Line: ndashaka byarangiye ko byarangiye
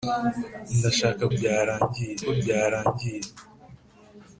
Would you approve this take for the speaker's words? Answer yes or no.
yes